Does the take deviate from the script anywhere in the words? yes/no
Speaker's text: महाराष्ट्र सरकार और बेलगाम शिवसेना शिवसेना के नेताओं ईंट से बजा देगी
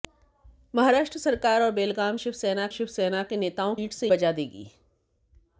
no